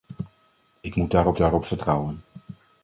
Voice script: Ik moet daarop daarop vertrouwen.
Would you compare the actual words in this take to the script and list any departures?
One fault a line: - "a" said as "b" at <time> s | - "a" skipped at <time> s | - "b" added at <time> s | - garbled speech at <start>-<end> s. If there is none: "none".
none